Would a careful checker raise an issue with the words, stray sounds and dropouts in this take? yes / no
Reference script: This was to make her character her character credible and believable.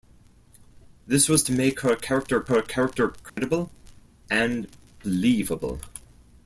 yes